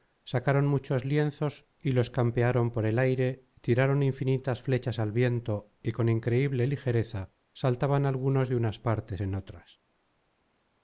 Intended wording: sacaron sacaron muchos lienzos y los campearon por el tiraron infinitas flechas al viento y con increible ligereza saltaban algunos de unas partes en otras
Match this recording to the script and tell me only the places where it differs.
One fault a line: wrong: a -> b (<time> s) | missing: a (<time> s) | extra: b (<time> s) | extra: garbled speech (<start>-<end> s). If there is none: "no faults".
missing: sacaron (0.7 s)
extra: aire (3.0 s)